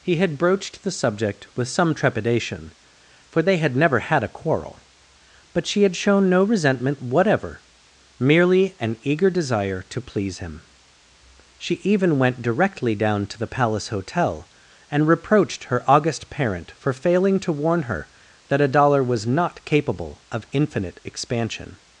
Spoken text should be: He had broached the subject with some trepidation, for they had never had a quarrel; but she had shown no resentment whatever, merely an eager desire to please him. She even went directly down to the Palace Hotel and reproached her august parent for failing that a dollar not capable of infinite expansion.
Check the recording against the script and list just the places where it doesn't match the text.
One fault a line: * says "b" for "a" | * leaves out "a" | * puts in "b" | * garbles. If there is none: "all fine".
* puts in "to warn her"
* puts in "was"